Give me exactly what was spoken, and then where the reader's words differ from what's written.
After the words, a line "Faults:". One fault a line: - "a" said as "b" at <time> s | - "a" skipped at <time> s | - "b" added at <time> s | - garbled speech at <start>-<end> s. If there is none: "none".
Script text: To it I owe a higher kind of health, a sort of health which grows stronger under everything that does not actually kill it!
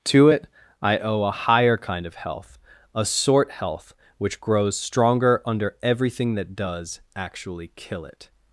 To it I owe a higher kind of health, a sort health which grows stronger under everything that does actually kill it!
Faults:
- "of" skipped at 3.5 s
- "not" skipped at 7.0 s